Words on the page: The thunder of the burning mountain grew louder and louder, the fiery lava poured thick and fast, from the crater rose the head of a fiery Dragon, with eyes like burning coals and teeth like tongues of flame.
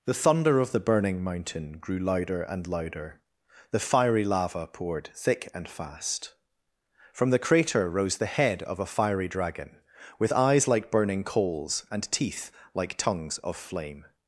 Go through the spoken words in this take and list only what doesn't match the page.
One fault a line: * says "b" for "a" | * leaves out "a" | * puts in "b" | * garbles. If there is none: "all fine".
all fine